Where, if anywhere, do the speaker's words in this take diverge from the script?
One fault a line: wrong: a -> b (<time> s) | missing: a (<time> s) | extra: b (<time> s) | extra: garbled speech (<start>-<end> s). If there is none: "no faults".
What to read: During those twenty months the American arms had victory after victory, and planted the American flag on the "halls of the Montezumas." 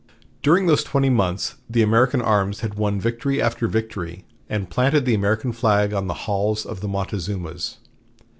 extra: won (2.7 s)